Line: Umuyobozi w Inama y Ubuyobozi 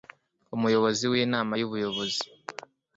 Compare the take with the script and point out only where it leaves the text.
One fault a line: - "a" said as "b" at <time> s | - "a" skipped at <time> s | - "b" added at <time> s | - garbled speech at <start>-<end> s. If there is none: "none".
none